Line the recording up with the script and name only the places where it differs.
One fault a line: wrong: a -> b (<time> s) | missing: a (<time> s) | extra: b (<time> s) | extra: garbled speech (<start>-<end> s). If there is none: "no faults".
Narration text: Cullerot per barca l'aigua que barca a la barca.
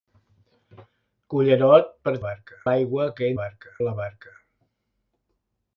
no faults